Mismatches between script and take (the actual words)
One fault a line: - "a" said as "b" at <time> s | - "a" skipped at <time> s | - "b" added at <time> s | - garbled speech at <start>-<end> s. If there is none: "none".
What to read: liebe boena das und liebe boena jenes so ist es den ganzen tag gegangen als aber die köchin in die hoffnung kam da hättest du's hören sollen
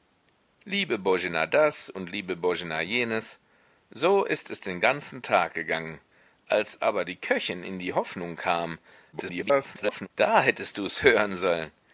- garbled speech at 9.1-10.1 s